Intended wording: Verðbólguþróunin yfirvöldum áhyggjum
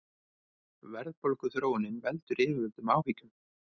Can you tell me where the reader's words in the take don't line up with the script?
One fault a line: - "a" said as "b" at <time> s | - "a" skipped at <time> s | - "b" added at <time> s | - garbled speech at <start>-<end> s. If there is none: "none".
- "veldur" added at 2.1 s